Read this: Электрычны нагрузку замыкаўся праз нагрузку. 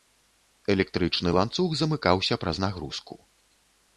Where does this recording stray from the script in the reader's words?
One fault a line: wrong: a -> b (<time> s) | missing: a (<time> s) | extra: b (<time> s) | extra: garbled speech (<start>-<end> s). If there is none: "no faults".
wrong: нагрузку -> ланцуг (1.4 s)